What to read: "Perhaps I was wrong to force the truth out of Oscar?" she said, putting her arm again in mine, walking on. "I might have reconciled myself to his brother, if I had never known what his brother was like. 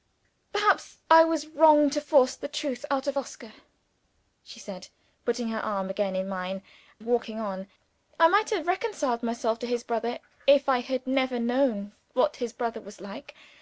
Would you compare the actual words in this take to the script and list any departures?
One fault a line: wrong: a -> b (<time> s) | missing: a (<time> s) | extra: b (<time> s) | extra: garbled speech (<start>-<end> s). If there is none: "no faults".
no faults